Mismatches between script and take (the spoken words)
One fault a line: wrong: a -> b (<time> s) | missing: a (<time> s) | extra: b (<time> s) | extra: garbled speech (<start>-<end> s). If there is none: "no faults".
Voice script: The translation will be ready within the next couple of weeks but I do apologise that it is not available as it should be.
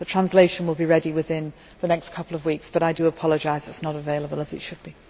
no faults